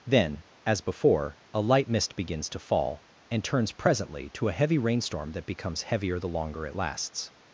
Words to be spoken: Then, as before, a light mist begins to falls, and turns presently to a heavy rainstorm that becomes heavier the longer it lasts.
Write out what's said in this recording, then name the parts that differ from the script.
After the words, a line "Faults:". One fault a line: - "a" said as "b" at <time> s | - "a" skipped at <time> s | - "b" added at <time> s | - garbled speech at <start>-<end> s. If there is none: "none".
Then, as before, a light mist begins to fall, and turns presently to a heavy rainstorm that becomes heavier the longer it lasts.
Faults:
- "falls" said as "fall" at 2.6 s